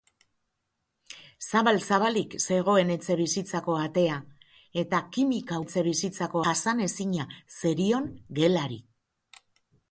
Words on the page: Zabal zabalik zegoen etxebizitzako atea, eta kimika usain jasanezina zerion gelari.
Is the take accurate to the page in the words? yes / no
no